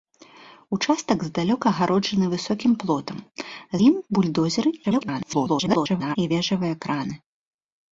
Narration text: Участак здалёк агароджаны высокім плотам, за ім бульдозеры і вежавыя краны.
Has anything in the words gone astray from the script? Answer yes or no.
yes